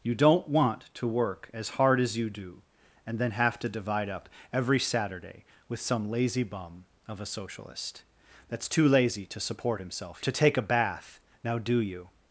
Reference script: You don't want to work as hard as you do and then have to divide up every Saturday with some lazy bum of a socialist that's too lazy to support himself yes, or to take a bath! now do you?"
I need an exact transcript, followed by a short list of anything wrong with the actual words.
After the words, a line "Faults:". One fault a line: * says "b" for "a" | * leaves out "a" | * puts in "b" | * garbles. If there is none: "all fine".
You don't want to work as hard as you do and then have to divide up every Saturday with some lazy bum of a socialist that's too lazy to support himself to take a bath! now do you?"
Faults:
* leaves out "yes or"